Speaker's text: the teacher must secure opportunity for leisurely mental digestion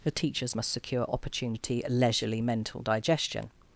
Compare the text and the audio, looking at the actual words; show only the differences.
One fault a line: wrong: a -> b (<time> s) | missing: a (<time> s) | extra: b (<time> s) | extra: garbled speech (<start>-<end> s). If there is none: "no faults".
wrong: teacher -> teachers (0.1 s)
missing: for (1.8 s)